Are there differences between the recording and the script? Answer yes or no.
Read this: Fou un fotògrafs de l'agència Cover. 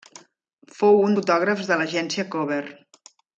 no